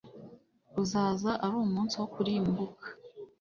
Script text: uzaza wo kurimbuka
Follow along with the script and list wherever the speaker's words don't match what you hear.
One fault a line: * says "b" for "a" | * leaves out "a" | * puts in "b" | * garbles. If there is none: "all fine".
* puts in "ari umunsi"